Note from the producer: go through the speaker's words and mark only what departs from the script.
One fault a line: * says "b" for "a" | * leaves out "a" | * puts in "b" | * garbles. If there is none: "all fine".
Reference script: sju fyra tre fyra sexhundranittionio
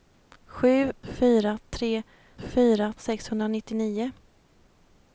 all fine